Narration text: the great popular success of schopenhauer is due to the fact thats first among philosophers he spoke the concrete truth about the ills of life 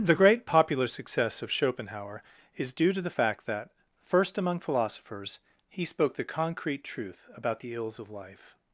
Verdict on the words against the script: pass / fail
fail